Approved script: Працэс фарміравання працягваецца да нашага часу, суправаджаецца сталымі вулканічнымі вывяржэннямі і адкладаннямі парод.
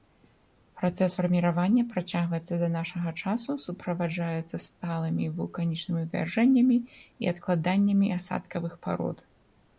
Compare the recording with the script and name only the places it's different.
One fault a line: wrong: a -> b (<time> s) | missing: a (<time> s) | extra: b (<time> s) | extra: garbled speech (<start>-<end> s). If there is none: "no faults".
extra: асадкавых (8.2 s)